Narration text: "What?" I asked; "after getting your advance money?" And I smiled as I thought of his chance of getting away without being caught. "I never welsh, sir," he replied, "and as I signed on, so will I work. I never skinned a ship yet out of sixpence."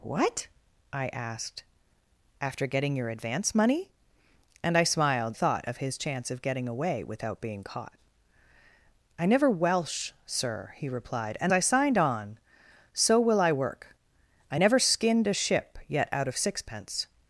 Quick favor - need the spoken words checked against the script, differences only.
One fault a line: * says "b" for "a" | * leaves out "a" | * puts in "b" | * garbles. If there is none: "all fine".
* leaves out "as I"
* leaves out "as"